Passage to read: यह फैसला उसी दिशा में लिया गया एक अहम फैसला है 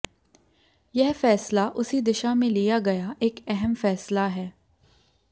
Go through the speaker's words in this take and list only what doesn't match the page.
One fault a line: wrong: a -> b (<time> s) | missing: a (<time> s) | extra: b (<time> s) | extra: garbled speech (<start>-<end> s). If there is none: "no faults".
no faults